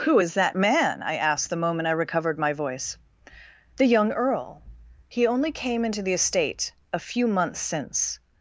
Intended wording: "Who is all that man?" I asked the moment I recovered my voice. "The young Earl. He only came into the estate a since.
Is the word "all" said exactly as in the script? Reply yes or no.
no